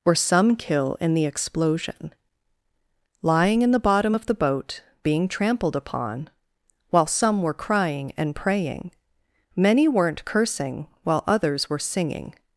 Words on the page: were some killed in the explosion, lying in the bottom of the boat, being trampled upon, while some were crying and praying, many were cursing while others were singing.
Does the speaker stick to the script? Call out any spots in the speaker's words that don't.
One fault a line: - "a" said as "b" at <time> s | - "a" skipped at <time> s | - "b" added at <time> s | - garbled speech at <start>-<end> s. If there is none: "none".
- "killed" said as "kill" at 0.6 s
- "were" said as "weren't" at 9.9 s